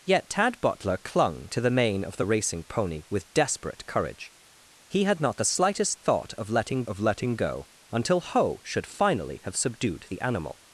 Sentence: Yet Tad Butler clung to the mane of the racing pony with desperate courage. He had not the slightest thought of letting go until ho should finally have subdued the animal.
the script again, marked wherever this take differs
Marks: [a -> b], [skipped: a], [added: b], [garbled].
Yet Tad Butler clung to the mane of the racing pony with desperate courage. He had not the slightest thought of letting [added: of letting] go until ho should finally have subdued the animal.